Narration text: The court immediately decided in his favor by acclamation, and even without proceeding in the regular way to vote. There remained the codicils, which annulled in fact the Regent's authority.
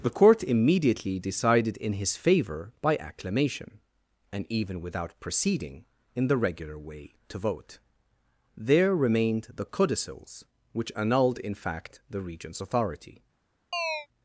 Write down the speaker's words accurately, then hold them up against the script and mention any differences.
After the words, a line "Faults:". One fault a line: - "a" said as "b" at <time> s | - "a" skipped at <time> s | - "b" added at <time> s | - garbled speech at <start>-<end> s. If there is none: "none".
The court immediately decided in his favor by acclamation, and even without proceeding in the regular way to vote. There remained the codicils, which annulled in fact the Regent's authority.
Faults:
none